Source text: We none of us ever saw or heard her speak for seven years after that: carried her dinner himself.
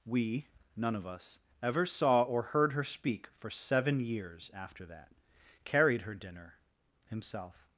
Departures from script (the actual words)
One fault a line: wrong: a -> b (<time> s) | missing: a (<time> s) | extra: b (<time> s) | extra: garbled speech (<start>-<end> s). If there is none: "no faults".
no faults